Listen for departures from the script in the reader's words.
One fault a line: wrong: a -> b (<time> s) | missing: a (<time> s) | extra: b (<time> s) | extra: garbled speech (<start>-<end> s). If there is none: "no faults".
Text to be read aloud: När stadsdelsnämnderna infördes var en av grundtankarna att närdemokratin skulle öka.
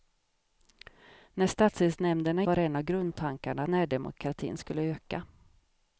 missing: infördes (2.4 s)
missing: att (3.6 s)